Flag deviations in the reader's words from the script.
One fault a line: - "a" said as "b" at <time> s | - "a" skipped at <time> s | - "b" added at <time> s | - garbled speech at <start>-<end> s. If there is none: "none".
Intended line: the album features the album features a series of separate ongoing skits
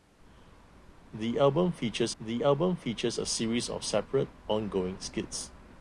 none